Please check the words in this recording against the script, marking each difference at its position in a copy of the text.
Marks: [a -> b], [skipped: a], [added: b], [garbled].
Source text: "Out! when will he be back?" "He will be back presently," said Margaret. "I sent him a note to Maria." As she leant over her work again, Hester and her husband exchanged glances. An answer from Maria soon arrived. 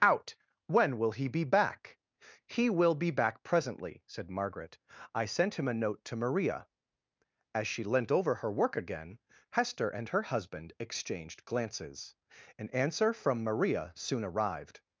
"Out! when will he be back?" "He will be back presently," said Margaret. "I sent him a note to Maria." As she leant over her work again, Hester and her husband exchanged glances. An answer from Maria soon arrived.